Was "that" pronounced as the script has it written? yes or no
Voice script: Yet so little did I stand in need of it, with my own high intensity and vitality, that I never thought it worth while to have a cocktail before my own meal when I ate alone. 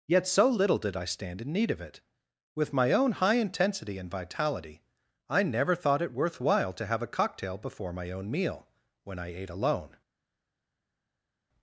no